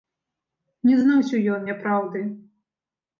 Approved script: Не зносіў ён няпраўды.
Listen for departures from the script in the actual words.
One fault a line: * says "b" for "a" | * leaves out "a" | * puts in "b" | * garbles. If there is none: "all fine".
all fine